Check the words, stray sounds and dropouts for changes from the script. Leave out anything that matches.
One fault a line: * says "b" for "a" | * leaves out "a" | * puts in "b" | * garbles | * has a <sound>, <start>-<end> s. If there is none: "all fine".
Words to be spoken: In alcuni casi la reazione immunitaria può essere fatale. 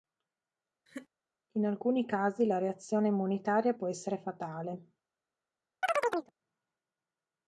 * has a laugh, 0.9-1.1 s
* has a chirp, 5.8-6.3 s